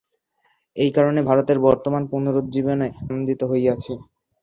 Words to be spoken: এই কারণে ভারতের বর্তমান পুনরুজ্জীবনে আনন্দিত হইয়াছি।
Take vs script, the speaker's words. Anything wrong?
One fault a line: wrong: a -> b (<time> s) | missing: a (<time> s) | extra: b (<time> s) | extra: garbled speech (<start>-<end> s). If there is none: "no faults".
no faults